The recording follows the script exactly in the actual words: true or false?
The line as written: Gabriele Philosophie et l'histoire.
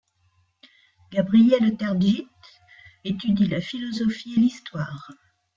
false